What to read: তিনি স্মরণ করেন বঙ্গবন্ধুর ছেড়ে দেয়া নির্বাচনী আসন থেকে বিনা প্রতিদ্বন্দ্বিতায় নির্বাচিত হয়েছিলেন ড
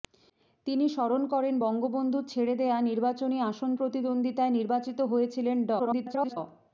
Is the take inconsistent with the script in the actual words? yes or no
yes